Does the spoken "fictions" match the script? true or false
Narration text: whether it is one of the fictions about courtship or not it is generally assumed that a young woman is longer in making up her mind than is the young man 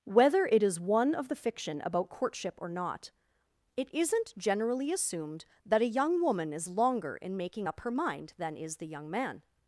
false